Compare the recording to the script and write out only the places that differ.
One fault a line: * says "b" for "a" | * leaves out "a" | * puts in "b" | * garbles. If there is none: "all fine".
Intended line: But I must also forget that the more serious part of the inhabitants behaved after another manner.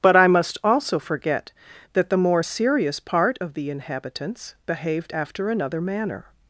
all fine